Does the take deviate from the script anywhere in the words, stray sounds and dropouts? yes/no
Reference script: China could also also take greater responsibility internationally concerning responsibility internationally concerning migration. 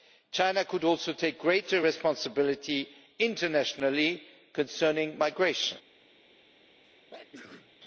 yes